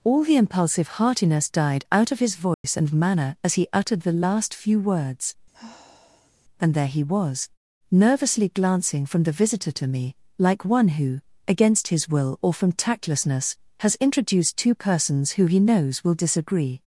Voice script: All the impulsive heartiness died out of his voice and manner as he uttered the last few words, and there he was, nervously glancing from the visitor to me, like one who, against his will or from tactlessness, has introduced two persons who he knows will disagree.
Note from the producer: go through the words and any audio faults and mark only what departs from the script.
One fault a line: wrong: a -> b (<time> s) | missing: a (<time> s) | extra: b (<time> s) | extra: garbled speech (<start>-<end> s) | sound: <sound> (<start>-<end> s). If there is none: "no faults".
sound: dropout (2.5-2.6 s)
sound: sigh (5.5-6.3 s)